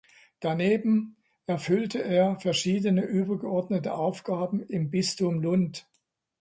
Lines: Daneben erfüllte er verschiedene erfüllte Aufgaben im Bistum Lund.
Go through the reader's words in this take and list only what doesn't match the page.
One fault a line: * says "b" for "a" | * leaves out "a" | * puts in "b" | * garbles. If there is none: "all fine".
* says "übergeordnete" for "erfüllte"